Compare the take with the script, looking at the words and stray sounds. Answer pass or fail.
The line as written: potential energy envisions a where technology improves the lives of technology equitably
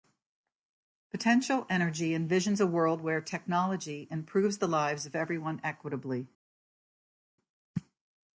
fail